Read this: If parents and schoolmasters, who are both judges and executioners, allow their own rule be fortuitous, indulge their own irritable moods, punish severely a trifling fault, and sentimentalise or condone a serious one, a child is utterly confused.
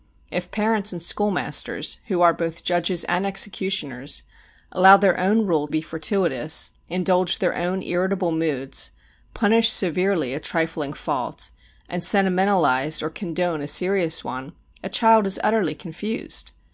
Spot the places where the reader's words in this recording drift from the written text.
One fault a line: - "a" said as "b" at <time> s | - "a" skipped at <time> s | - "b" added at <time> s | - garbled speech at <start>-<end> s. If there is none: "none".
none